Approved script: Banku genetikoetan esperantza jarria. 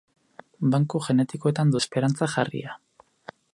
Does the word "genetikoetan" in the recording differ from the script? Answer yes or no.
no